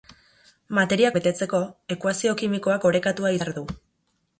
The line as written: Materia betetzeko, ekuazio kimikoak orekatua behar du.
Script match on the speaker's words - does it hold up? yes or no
yes